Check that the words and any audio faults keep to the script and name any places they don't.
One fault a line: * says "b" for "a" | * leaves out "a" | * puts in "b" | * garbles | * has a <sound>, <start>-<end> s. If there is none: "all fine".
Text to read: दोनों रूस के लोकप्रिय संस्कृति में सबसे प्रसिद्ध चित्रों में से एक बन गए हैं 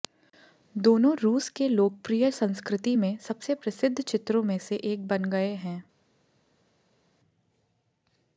all fine